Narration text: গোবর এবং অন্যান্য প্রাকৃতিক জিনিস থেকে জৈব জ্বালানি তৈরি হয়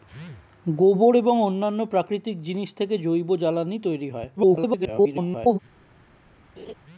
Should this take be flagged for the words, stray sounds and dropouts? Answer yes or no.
yes